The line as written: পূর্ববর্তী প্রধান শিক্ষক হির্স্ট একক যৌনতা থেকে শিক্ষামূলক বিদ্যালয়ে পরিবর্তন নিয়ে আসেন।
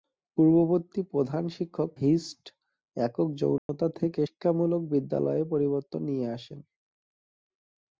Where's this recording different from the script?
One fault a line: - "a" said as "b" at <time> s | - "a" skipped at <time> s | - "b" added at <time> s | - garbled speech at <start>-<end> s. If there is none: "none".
none